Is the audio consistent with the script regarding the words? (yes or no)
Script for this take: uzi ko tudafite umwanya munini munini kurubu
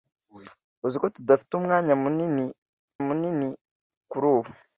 yes